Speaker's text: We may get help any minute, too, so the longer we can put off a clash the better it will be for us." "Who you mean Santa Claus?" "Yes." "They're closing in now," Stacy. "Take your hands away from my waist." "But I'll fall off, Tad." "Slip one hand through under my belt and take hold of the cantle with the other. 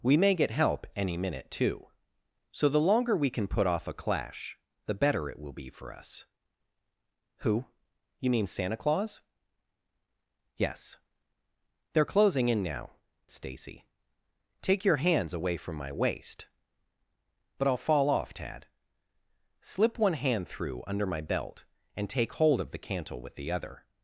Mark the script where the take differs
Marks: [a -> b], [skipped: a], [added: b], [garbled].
We may get help any minute, too, so the longer we can put off a clash the better it will be for us." "Who you mean Santa Claus?" "Yes." "They're closing in now," Stacy. "Take your hands away from my waist." "But I'll fall off, Tad." "Slip one hand through under my belt and take hold of the cantle with the other.